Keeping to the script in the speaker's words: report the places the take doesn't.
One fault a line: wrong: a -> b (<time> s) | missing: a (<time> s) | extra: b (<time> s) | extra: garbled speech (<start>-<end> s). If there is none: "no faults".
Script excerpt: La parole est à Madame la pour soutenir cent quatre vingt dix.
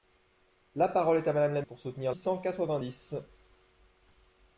no faults